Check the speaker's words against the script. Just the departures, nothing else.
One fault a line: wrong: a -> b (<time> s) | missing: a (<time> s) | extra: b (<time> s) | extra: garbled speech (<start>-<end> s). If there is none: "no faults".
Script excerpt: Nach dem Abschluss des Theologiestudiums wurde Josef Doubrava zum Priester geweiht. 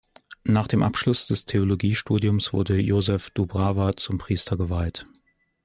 no faults